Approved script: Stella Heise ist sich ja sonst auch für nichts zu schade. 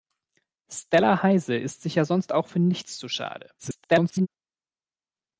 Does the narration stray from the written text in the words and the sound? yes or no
yes